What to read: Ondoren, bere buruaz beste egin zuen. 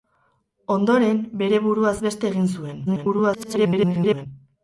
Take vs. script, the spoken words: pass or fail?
fail